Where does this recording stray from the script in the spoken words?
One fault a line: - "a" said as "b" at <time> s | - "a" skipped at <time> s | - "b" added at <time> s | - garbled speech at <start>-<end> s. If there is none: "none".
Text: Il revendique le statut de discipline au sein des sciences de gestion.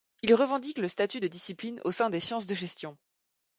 none